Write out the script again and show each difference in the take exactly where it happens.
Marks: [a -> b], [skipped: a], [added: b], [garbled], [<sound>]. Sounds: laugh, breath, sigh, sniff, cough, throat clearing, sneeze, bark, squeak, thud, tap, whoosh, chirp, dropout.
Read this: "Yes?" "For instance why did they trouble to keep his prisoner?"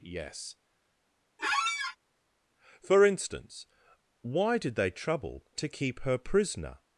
"Yes?" [squeak] "For instance why did they trouble to keep [his -> her] prisoner?"